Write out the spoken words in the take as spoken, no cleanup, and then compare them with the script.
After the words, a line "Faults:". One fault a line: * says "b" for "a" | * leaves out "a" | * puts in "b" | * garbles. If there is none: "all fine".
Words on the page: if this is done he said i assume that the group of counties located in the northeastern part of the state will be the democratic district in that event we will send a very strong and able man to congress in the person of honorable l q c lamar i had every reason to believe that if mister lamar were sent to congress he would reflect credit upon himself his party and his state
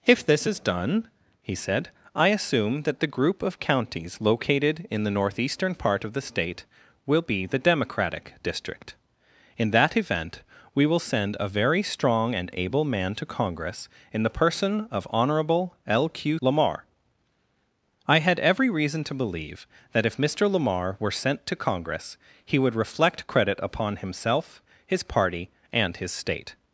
if this is done he said i assume that the group of counties located in the northeastern part of the state will be the democratic district in that event we will send a very strong and able man to congress in the person of honorable l q lamar i had every reason to believe that if mister lamar were sent to congress he would reflect credit upon himself his party and his state
Faults:
* leaves out "c"